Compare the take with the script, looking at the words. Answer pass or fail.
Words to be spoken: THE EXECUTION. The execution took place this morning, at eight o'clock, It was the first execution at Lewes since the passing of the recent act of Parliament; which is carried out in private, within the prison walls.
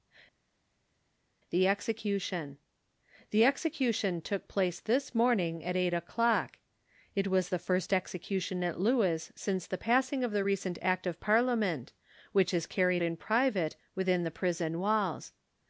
fail